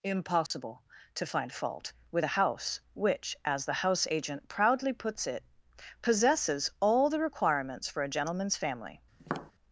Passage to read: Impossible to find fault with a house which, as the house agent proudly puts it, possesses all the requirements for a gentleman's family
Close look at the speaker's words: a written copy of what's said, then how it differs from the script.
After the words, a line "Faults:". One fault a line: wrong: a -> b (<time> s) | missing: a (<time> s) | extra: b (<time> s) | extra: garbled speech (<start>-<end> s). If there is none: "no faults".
Impossible to find fault with a house which, as the house agent proudly puts it, possesses all the requirements for a gentleman's family
Faults:
no faults